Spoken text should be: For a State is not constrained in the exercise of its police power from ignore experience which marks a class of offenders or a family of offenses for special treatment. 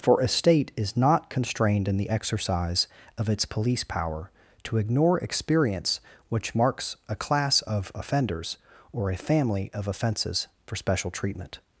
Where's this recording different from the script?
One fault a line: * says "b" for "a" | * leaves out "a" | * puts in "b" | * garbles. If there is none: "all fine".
* says "to" for "from"